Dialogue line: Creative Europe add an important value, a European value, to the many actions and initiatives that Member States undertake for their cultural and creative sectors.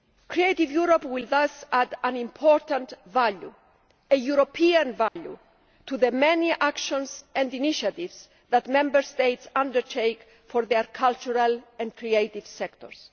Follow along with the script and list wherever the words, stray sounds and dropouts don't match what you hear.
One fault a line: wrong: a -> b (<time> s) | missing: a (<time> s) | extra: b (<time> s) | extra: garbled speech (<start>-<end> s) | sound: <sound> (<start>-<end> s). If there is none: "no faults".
extra: will thus (1.1 s)
sound: dropout (5.1-5.2 s)